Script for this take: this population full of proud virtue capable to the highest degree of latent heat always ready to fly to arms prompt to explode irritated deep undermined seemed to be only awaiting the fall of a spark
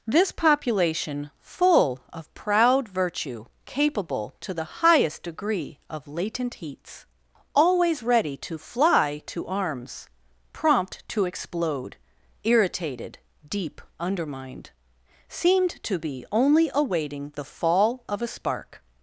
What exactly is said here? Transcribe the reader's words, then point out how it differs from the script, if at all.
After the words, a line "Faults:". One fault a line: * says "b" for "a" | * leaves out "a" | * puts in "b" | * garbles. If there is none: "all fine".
this population full of proud virtue capable to the highest degree of latent heats always ready to fly to arms prompt to explode irritated deep undermined seemed to be only awaiting the fall of a spark
Faults:
* says "heats" for "heat"